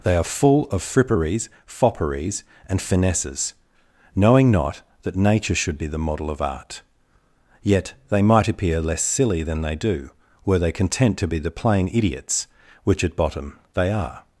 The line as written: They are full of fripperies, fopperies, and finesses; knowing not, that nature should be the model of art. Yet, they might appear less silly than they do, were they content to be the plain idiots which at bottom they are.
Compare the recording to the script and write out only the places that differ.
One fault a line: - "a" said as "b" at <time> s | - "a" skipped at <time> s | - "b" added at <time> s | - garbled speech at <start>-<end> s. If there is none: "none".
none